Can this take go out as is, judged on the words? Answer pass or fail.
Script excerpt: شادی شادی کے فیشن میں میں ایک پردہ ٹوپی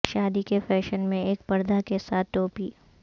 fail